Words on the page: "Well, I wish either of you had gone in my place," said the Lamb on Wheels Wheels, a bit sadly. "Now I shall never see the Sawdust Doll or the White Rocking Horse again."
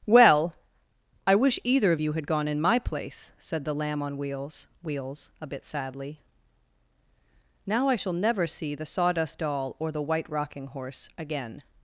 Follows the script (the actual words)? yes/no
yes